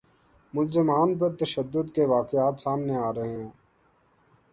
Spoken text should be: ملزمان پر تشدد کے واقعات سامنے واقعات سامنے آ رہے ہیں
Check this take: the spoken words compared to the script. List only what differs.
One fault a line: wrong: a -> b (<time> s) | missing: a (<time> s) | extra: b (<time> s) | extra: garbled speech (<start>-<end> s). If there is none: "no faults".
missing: واقعات سامنے (3.0 s)